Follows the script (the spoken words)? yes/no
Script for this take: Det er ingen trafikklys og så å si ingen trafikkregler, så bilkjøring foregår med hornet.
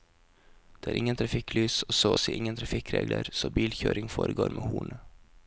yes